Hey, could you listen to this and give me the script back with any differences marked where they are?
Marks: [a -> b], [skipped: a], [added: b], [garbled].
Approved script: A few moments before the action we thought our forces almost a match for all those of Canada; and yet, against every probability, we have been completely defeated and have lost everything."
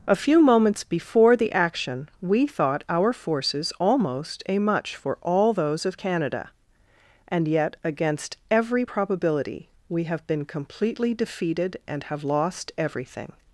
A few moments before the action we thought our forces almost a [match -> much] for all those of Canada; and yet, against every probability, we have been completely defeated and have lost everything."